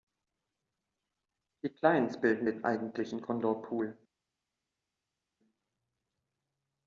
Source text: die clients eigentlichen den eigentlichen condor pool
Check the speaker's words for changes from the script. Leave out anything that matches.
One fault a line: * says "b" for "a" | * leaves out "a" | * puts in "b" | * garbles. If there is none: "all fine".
* says "bilden" for "eigentlichen"